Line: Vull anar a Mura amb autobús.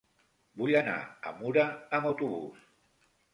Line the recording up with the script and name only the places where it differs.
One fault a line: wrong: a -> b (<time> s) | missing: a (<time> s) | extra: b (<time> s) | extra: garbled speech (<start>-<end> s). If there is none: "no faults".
no faults